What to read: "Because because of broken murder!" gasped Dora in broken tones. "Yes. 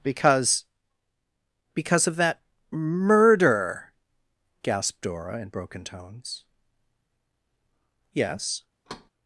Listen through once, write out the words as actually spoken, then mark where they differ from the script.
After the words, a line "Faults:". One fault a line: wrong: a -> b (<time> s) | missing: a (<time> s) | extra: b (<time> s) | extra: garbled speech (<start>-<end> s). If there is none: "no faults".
"Because because of that murder!" gasped Dora in broken tones. "Yes.
Faults:
wrong: broken -> that (2.2 s)